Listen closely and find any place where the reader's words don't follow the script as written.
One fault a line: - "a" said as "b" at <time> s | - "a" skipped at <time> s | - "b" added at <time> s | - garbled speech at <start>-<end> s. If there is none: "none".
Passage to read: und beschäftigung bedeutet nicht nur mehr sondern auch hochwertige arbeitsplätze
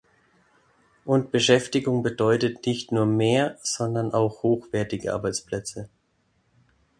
none